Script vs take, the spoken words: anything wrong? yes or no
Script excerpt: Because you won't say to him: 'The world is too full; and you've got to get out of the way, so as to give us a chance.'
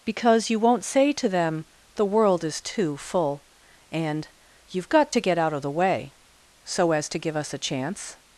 yes